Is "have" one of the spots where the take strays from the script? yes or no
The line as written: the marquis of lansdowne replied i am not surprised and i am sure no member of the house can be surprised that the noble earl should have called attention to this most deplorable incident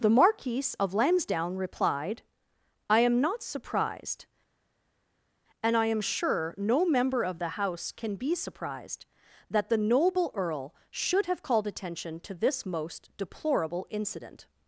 no